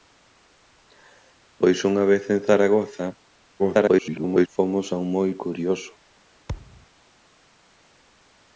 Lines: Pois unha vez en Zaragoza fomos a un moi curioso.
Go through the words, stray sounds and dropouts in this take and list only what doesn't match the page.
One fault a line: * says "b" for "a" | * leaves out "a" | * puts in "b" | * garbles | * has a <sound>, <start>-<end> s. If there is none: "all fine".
* garbles
* has a thud, 6.5-6.9 s